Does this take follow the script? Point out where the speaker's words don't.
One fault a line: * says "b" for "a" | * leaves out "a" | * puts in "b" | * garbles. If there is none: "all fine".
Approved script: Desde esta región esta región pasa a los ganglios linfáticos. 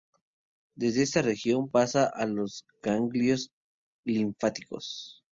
* leaves out "esta región"